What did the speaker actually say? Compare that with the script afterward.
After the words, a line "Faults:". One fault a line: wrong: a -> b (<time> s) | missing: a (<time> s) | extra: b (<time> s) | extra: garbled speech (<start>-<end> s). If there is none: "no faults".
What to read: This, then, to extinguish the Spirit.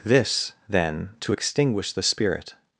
This, then, to extinguish the Spirit.
Faults:
no faults